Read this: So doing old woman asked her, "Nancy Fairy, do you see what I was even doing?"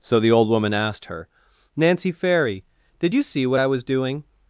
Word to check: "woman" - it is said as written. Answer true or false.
true